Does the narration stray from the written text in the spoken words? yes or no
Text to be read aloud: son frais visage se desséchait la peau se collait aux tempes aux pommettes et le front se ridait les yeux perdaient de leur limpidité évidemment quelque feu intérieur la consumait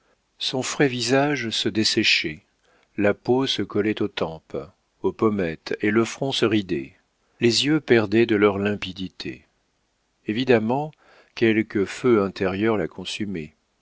no